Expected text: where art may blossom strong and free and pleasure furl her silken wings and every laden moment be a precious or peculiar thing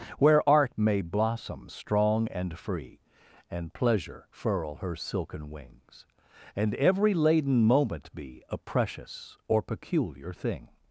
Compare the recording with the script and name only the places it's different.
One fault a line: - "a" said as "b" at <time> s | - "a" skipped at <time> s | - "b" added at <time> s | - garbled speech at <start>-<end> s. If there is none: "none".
none